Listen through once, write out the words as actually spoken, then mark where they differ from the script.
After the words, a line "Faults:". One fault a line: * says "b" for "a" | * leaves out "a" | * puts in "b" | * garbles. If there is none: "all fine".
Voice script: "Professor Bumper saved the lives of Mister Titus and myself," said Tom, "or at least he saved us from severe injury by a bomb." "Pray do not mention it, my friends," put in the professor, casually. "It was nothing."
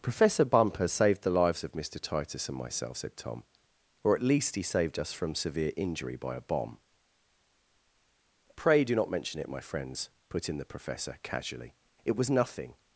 "Professor Bumper saved the lives of Mister Titus and myself," said Tom, "or at least he saved us from severe injury by a bomb." "Pray do not mention it, my friends," put in the professor, casually. "It was nothing."
Faults:
all fine